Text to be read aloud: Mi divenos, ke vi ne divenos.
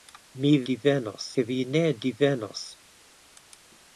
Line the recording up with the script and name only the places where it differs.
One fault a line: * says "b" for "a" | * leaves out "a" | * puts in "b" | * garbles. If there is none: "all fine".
all fine